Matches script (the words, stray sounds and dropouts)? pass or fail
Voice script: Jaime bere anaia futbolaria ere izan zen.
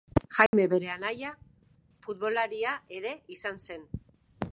fail